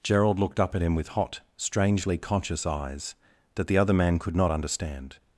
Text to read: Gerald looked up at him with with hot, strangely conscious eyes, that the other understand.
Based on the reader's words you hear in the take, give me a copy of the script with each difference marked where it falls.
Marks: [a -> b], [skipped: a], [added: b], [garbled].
Gerald looked up at him with [skipped: with] hot, strangely conscious eyes, that the other [added: man could not] understand.